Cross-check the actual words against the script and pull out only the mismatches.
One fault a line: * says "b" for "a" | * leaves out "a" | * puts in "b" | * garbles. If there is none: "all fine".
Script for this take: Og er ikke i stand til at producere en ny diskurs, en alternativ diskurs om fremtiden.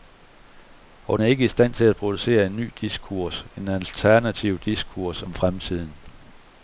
all fine